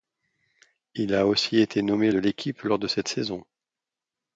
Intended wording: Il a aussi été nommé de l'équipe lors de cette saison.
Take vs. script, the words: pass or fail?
pass